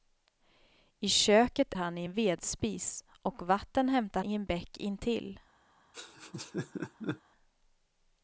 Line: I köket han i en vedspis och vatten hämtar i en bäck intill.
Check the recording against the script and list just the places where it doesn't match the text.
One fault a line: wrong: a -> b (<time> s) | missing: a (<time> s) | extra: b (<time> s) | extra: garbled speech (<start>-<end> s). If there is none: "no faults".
no faults